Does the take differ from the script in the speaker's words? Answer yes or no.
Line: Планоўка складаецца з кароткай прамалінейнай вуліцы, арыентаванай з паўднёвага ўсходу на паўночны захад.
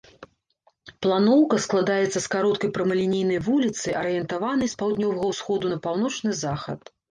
no